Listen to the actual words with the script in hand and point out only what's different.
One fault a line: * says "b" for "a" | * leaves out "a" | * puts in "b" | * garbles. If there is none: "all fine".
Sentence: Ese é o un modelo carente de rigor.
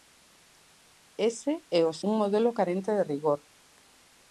all fine